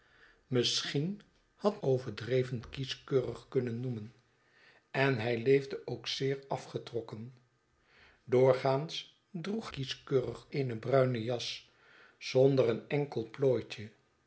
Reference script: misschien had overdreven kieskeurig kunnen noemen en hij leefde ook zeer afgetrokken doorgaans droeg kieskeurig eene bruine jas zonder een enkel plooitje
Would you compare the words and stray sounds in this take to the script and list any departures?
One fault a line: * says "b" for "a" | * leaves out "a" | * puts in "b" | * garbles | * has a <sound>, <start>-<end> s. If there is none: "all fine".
all fine